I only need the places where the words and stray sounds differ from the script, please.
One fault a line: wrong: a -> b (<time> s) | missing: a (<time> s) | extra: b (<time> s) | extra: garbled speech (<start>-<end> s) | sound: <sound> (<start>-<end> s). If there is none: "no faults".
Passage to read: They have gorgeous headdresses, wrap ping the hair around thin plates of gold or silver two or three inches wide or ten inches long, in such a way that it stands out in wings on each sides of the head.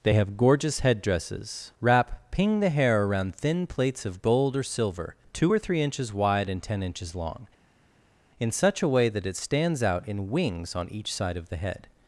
wrong: or -> and (6.5 s)
wrong: sides -> side (11.1 s)